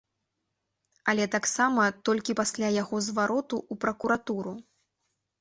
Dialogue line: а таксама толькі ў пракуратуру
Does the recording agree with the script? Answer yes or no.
no